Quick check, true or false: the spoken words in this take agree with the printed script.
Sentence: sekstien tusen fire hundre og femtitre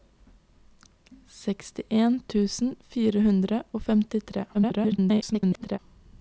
false